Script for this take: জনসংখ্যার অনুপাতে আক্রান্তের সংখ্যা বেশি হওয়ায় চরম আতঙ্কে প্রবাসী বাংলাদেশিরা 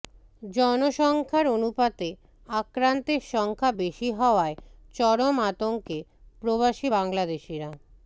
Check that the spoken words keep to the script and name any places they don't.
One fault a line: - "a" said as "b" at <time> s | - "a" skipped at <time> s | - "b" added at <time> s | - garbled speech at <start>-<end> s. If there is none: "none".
none